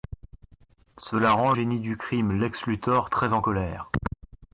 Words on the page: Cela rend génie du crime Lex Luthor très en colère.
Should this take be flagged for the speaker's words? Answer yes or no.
no